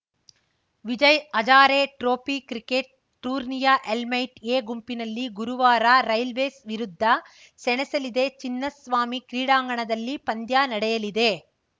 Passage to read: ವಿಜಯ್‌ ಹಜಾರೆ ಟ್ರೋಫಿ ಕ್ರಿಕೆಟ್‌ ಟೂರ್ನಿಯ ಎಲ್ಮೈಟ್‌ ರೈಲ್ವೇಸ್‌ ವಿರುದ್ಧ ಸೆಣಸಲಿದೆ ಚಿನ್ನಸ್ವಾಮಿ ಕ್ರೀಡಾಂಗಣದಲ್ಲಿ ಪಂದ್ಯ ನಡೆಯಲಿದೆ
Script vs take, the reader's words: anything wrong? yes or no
yes